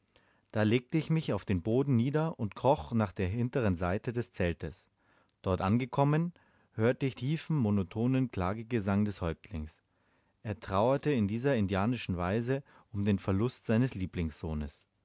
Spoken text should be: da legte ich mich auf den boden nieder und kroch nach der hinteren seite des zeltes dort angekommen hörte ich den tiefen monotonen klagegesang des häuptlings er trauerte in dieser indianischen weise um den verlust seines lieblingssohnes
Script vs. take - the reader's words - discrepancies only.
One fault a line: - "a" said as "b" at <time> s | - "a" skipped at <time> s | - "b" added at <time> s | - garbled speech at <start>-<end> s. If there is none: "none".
- "den" skipped at 7.2 s